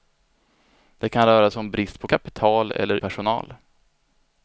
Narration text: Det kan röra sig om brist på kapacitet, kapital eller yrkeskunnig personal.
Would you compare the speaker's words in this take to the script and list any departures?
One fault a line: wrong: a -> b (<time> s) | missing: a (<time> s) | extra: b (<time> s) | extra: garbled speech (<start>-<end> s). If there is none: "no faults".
missing: kapacitet (2.1 s)
missing: yrkeskunnig (3.0 s)